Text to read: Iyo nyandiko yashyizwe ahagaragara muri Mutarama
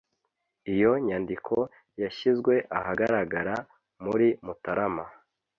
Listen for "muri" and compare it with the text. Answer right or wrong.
right